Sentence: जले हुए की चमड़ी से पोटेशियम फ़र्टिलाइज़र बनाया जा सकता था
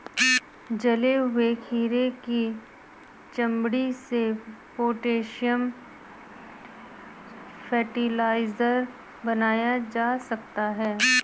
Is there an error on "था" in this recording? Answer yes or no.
yes